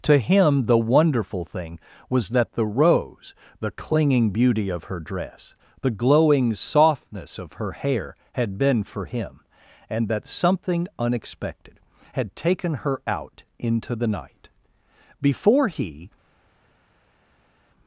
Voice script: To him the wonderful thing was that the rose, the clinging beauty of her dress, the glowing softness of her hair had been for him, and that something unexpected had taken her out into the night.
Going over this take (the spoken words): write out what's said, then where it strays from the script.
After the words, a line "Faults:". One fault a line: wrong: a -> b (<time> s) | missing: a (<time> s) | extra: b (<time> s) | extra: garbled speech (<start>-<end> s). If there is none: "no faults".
To him the wonderful thing was that the rose, the clinging beauty of her dress, the glowing softness of her hair had been for him, and that something unexpected had taken her out into the night. Before he
Faults:
extra: Before he (15.2 s)